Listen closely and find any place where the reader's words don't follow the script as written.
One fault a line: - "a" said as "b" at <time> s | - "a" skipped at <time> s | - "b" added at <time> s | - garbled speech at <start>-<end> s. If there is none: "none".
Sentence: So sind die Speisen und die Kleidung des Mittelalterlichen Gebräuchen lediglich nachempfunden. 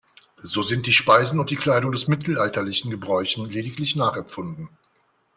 none